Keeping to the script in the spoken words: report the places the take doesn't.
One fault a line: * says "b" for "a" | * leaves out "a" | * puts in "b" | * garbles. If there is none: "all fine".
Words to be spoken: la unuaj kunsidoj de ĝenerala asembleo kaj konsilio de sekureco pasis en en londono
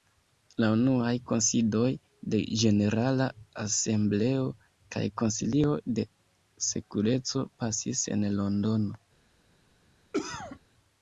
* leaves out "en"